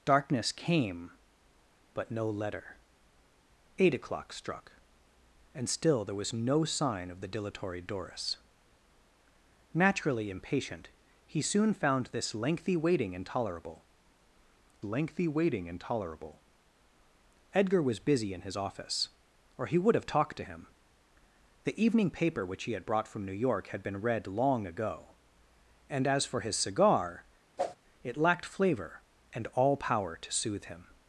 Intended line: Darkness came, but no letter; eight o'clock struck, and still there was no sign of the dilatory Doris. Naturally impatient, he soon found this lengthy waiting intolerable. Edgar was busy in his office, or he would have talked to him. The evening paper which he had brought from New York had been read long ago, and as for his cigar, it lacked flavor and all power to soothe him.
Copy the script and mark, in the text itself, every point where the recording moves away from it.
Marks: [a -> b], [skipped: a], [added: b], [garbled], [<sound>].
Darkness came, but no letter; eight o'clock struck, and still there was no sign of the dilatory Doris. Naturally impatient, he soon found this lengthy waiting intolerable. [added: lengthy waiting intolerable] Edgar was busy in his office, or he would have talked to him. The evening paper which he had brought from New York had been read long ago, and as for his cigar, [whoosh] it lacked flavor and all power to soothe him.